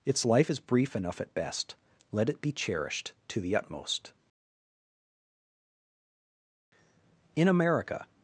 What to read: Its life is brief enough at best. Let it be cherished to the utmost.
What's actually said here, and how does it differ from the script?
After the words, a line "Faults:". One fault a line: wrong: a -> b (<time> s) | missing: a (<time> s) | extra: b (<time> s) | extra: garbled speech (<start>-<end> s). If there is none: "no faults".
Its life is brief enough at best. Let it be cherished to the utmost. In America
Faults:
extra: In America (7.4 s)